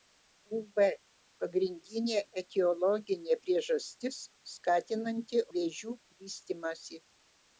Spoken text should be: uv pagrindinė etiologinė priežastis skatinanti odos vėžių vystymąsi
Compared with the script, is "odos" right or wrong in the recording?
wrong